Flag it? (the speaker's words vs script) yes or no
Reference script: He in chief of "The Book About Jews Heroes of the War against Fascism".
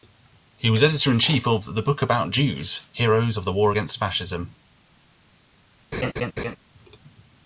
yes